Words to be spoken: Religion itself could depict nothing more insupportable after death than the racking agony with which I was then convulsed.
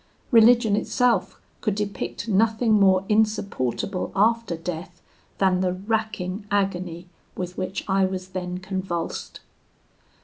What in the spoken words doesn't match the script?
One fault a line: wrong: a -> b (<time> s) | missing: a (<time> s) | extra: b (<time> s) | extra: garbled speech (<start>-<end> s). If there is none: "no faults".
no faults